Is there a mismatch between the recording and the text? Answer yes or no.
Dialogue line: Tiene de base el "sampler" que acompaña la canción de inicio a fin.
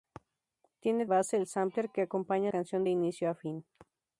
yes